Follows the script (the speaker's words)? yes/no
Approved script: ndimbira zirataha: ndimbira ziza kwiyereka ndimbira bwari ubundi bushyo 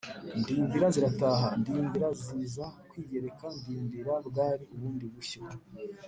yes